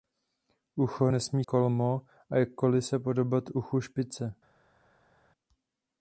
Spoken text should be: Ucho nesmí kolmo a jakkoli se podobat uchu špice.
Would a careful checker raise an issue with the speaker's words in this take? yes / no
no